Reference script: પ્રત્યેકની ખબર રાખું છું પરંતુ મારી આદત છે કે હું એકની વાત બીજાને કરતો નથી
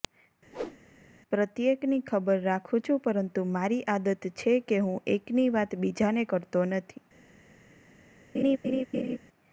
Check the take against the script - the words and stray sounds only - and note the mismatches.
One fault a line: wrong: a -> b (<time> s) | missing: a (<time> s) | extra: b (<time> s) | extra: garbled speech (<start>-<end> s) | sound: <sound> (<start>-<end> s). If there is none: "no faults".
sound: whoosh (0.5-0.8 s)
sound: laugh (8.3-9.2 s)